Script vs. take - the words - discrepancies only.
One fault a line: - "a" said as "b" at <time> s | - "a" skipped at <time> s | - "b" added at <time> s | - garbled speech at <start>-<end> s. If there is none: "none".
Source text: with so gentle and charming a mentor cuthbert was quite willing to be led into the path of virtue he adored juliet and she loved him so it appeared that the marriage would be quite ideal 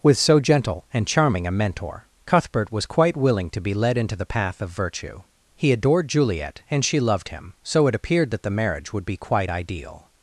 none